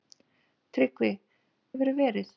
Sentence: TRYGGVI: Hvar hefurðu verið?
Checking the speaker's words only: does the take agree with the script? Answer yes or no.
no